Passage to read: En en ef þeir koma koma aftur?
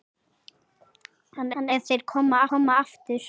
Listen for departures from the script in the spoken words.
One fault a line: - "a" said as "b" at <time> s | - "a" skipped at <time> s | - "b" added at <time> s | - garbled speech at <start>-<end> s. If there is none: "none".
none